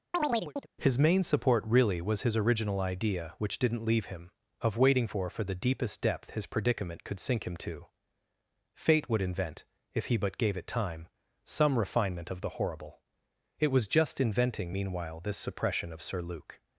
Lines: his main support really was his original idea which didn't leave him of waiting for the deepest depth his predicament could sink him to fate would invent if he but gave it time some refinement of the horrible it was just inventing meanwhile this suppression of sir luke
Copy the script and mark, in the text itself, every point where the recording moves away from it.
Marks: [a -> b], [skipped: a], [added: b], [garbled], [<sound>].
[chirp] his main support really was his original idea which didn't leave him of waiting for [added: for] the deepest depth his predicament could sink him to fate would invent if he but gave it time some refinement of the horrible it was just inventing meanwhile this suppression of sir luke